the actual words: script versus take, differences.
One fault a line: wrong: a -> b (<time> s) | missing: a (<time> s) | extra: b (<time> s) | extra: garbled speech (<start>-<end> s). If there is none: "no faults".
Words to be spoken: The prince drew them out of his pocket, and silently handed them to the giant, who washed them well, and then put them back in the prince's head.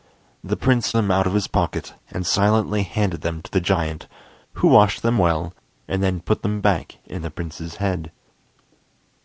missing: drew (0.9 s)